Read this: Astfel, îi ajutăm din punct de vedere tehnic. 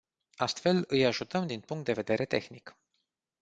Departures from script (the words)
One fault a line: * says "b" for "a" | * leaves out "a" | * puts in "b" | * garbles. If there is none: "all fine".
all fine